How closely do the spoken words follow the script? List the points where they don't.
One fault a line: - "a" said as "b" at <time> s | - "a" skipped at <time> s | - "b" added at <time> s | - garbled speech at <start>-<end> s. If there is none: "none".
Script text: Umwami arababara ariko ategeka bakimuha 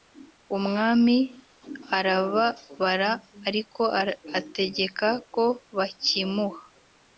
- "ko" added at 5.3 s